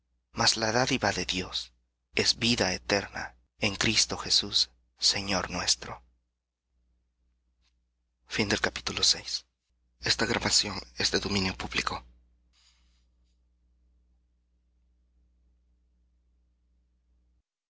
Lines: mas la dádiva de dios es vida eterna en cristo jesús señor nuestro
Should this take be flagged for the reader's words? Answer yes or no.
no